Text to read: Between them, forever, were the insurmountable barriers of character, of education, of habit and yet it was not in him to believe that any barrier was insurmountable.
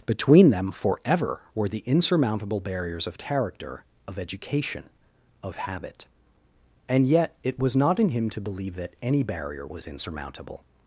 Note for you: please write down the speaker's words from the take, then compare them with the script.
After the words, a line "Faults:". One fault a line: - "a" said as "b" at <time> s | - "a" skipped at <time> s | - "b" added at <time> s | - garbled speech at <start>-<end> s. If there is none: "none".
Between them, forever, were the insurmountable barriers of character, of education, of habit and yet it was not in him to believe that any barrier was insurmountable.
Faults:
none